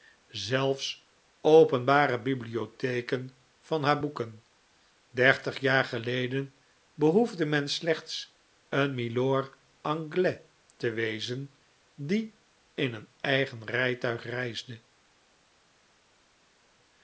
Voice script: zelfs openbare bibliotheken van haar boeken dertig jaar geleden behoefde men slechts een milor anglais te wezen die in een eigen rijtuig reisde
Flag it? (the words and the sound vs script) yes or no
no